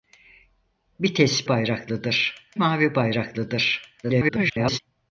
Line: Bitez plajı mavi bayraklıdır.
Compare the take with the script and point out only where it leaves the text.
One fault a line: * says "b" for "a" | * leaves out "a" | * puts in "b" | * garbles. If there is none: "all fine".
* says "bayraklıdır" for "plajı"
* garbles